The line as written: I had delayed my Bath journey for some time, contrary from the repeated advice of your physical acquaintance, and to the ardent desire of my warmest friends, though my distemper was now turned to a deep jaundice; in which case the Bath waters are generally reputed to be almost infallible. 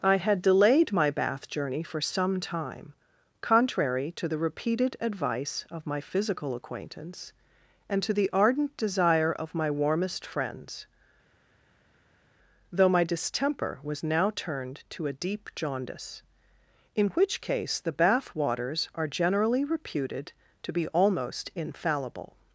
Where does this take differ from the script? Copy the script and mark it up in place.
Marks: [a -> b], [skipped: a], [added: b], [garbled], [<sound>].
I had delayed my Bath journey for some time, contrary [from -> to] the repeated advice of [your -> my] physical acquaintance, and to the ardent desire of my warmest friends, though my distemper was now turned to a deep jaundice; in which case the Bath waters are generally reputed to be almost infallible.